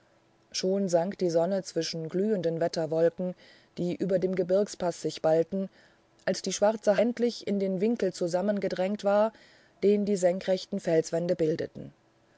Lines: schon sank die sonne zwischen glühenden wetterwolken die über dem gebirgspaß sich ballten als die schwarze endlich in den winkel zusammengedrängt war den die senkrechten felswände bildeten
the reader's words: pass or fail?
pass